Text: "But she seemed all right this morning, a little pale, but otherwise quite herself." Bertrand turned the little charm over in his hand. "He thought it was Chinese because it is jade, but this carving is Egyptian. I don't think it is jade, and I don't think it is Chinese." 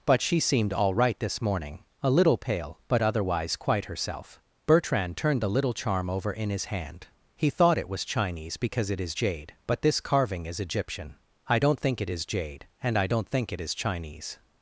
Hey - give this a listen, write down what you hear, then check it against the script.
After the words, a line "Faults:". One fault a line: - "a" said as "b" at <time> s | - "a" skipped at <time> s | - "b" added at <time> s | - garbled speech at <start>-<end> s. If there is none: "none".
"But she seemed all right this morning, a little pale, but otherwise quite herself." Bertrand turned the little charm over in his hand. "He thought it was Chinese because it is jade, but this carving is Egyptian. I don't think it is jade, and I don't think it is Chinese."
Faults:
none